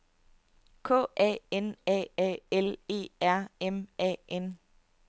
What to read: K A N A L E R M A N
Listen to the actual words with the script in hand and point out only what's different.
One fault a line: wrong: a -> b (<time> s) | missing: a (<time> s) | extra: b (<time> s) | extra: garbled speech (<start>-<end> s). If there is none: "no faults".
extra: A (2.2 s)